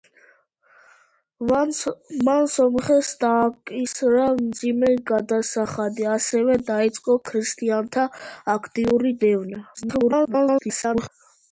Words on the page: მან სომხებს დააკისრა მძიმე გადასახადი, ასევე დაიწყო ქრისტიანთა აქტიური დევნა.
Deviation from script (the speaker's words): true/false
true